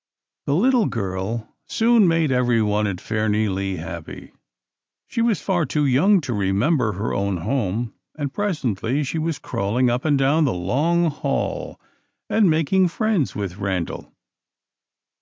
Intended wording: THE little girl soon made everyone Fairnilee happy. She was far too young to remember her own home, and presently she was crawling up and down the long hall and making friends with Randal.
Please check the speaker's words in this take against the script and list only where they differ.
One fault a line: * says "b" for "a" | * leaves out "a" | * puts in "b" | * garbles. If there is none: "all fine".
* puts in "at"